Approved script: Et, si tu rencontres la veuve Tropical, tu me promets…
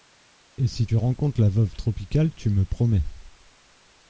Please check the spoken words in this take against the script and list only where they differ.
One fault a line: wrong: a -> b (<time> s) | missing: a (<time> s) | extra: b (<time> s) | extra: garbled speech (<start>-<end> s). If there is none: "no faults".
no faults